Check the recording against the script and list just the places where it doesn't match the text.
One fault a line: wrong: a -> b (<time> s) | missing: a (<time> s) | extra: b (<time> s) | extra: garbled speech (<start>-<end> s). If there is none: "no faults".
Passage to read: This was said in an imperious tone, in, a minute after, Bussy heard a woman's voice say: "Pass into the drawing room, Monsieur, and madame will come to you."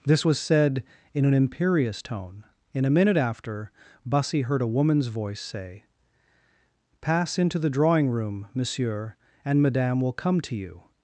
no faults